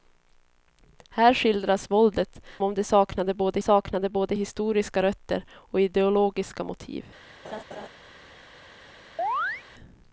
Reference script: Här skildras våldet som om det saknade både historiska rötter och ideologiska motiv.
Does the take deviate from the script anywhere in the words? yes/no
yes